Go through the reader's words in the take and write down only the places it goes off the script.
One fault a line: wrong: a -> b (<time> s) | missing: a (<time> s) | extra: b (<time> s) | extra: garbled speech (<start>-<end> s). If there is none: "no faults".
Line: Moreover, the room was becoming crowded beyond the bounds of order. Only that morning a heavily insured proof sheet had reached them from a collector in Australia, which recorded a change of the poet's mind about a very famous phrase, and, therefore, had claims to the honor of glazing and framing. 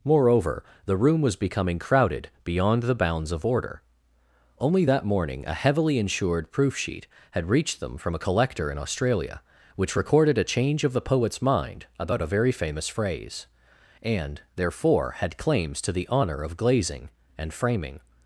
no faults